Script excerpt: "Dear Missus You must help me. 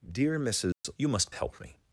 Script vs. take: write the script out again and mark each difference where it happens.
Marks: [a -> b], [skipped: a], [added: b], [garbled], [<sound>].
"Dear Missus [dropout] You must help me.